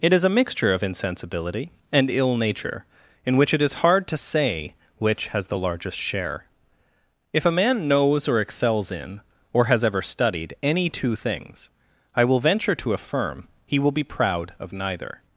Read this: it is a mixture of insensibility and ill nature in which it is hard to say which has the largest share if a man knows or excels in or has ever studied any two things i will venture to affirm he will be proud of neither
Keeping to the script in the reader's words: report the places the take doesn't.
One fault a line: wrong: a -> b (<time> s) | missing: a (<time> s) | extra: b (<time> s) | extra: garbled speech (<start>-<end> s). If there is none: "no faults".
no faults